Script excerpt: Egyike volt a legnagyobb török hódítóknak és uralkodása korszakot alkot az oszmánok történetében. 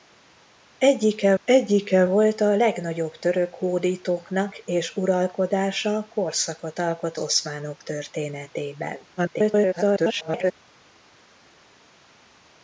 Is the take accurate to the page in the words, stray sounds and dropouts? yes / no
no